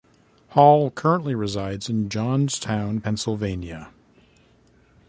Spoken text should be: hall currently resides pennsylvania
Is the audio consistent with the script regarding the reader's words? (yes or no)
no